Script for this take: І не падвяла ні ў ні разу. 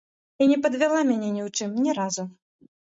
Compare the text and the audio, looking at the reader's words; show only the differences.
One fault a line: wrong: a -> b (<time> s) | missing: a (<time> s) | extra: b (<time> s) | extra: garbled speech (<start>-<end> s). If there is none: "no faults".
extra: мяне (1.1 s)
extra: чым (1.6 s)